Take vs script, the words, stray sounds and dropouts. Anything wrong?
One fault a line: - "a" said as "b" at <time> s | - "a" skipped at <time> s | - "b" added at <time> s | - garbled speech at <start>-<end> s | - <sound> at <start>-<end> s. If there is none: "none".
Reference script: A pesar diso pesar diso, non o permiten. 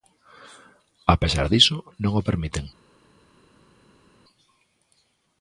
- "pesar diso" skipped at 1.8 s